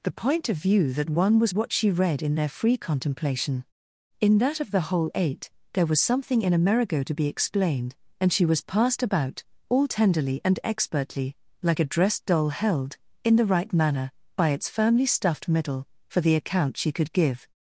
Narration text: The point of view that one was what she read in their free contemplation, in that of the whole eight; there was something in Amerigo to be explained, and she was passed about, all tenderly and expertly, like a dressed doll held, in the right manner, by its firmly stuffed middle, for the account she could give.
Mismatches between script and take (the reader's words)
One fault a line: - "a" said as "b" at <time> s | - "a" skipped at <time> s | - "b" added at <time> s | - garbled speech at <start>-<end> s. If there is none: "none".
none